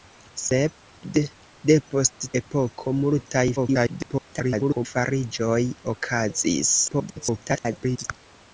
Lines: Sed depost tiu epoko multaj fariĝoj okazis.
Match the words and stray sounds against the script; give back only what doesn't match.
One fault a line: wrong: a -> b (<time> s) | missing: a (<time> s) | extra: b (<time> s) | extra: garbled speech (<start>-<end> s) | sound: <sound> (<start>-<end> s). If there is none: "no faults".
missing: tiu (2.3 s)
extra: garbled speech (3.6-4.9 s)
extra: garbled speech (6.9-8.0 s)